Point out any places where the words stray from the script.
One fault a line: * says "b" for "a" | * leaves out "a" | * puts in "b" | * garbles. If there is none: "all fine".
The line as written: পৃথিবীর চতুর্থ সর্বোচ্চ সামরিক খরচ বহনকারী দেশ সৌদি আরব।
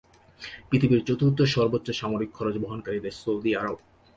all fine